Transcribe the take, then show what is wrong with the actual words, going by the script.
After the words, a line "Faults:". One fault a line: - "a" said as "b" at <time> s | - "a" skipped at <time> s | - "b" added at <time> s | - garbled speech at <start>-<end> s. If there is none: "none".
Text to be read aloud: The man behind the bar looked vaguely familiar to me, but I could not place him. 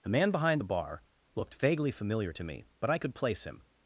The man behind the bar looked vaguely familiar to me, but I could place him.
Faults:
- "not" skipped at 3.1 s